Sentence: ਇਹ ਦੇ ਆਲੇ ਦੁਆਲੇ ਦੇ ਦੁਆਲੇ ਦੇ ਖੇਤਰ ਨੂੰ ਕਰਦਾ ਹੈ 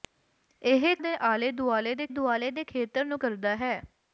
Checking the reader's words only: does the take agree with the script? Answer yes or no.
yes